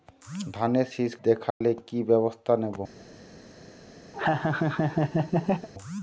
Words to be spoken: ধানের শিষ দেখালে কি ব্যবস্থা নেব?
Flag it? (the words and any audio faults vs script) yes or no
yes